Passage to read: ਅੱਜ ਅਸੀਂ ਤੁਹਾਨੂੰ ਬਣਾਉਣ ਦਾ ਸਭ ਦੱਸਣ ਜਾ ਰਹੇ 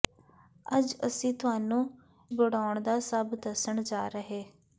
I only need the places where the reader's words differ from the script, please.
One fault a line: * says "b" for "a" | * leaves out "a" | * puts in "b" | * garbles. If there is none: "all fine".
all fine